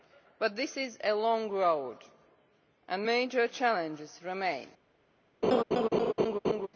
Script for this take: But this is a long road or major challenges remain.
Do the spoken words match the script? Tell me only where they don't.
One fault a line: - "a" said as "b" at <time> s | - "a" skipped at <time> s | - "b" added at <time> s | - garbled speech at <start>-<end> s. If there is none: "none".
- "or" said as "and" at 2.9 s